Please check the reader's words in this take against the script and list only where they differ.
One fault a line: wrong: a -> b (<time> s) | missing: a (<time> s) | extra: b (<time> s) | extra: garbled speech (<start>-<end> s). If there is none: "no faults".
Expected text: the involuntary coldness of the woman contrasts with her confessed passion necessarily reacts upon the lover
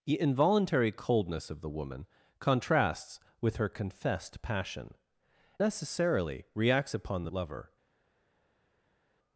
no faults